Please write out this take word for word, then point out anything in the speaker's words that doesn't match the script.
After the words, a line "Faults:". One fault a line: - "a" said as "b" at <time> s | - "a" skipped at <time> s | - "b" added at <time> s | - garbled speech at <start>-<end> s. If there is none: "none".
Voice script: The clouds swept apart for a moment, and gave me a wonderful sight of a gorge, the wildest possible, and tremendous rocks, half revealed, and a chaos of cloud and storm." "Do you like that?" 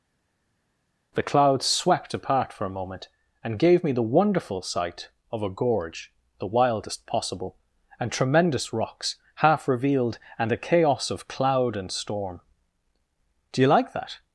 The clouds swept apart for a moment, and gave me the wonderful sight of a gorge, the wildest possible, and tremendous rocks, half revealed, and a chaos of cloud and storm." "Do you like that?"
Faults:
- "a" said as "the" at 3.9 s